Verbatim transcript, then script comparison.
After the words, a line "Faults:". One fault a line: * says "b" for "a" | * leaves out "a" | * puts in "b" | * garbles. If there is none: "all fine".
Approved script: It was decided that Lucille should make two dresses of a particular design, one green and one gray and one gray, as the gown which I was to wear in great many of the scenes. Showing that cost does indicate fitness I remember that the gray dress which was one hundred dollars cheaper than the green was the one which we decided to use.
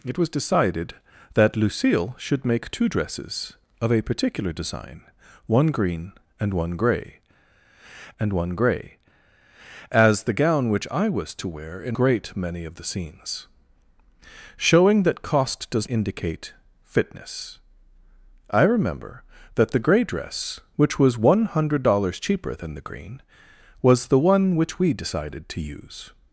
It was decided that Lucille should make two dresses of a particular design, one green and one gray and one gray, as the gown which I was to wear in great many of the scenes. Showing that cost does indicate fitness I remember that the gray dress which was one hundred dollars cheaper than the green was the one which we decided to use.
Faults:
all fine